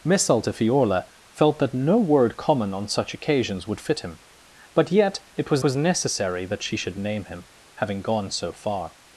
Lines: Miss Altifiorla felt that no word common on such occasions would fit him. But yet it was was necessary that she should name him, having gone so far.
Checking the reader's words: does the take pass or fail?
pass